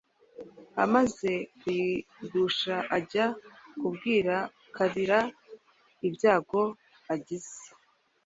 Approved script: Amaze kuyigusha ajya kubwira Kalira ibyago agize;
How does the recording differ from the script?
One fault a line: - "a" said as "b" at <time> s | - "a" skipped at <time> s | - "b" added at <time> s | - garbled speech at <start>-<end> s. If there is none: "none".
none